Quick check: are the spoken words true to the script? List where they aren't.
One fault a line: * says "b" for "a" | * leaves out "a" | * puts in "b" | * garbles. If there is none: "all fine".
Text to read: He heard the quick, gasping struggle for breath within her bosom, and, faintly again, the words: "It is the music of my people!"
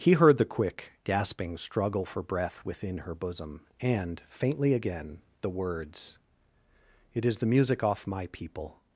* says "off" for "of"